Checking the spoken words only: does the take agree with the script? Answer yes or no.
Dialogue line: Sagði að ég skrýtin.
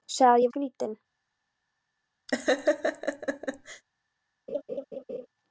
yes